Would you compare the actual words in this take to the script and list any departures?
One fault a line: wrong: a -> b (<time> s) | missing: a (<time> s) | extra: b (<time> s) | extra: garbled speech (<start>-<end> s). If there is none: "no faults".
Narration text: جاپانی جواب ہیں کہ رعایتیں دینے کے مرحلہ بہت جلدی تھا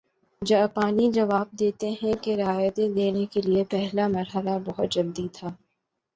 extra: دیتے (1.6 s)
extra: لیے پہلا (3.4 s)